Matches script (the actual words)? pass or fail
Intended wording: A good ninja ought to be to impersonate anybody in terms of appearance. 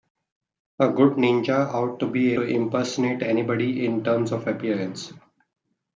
pass